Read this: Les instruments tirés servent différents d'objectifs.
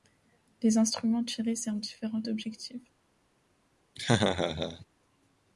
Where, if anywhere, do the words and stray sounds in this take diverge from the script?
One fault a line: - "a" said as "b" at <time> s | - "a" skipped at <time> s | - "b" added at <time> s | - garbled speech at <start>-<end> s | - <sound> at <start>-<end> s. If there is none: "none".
- laugh at 4.0-4.9 s